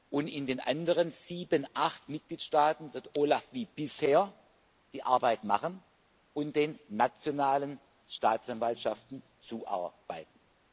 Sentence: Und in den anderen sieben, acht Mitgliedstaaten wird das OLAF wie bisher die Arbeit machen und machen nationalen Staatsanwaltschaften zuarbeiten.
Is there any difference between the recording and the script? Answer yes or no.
yes